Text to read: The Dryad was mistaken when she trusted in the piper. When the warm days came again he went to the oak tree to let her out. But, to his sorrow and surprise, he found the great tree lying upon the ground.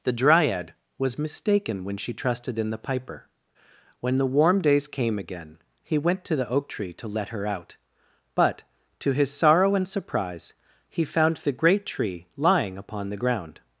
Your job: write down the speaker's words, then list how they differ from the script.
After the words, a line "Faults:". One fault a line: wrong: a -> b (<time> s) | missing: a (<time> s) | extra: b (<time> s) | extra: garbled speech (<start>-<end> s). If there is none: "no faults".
The Dryad was mistaken when she trusted in the piper. When the warm days came again he went to the oak tree to let her out. But, to his sorrow and surprise, he found the great tree lying upon the ground.
Faults:
no faults